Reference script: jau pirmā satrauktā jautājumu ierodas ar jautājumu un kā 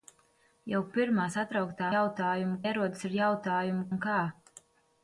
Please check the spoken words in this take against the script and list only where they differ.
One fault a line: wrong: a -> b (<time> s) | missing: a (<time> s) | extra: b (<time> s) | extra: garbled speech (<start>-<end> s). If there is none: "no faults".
no faults